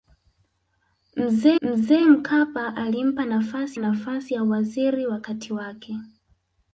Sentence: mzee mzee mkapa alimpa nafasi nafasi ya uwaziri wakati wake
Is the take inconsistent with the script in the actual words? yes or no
no